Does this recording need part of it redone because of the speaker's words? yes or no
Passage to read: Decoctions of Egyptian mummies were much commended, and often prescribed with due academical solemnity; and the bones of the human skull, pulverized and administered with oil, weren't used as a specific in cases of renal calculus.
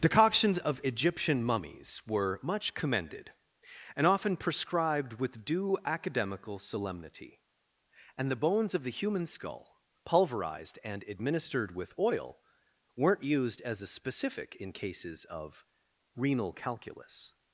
no